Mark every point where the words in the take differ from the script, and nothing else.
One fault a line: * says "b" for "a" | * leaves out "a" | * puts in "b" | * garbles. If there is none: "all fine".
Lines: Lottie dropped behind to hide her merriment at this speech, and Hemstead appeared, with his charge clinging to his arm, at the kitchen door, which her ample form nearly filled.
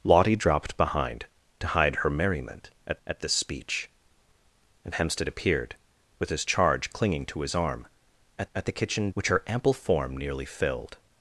* puts in "at"
* puts in "at"
* leaves out "door"